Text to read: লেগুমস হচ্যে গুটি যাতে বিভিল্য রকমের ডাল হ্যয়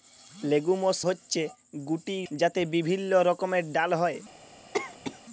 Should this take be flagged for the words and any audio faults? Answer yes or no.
yes